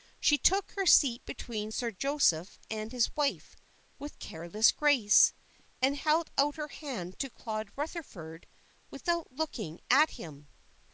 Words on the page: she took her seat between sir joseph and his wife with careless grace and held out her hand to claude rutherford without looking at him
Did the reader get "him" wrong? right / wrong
right